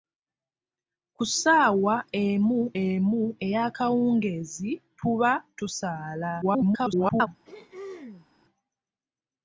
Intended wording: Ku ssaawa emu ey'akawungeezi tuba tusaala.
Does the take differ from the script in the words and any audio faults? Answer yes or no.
yes